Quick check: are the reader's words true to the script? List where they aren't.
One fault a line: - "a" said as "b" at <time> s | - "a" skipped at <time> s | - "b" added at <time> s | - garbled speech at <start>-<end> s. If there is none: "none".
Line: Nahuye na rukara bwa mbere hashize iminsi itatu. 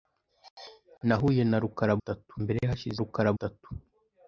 - "bwa" said as "itatu" at 2.0 s
- "iminsi" said as "rukara" at 3.0 s